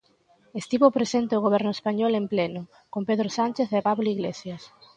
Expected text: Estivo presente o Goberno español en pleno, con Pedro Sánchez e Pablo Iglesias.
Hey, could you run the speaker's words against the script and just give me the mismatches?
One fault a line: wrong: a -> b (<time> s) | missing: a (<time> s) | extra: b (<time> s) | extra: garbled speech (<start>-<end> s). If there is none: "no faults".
no faults